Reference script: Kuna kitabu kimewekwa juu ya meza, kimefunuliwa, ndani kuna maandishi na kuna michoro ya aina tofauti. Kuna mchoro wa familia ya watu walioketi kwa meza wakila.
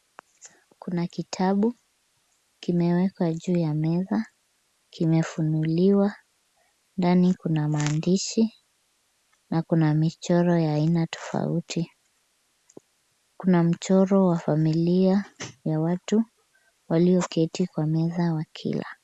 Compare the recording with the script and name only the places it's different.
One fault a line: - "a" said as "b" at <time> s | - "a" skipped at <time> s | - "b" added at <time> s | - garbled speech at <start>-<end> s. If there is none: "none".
none